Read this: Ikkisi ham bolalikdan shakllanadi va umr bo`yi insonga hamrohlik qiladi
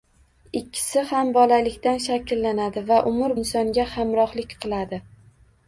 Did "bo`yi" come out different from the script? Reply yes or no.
yes